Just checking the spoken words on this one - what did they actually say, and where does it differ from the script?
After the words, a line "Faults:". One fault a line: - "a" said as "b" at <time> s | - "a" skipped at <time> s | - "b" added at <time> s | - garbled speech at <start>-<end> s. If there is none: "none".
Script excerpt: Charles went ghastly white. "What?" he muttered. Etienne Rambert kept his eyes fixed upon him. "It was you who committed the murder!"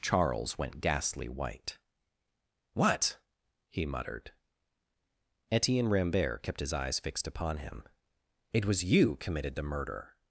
Charles went ghastly white. "What?" he muttered. Etienne Rambert kept his eyes fixed upon him. "It was you committed the murder!"
Faults:
- "who" skipped at 9.2 s